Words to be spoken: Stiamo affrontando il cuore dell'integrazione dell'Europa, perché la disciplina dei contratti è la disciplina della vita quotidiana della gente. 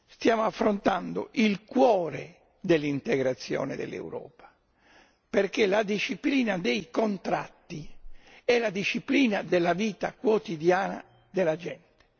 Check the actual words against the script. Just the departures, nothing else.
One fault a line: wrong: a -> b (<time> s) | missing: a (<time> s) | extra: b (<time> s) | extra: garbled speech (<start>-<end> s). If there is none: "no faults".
no faults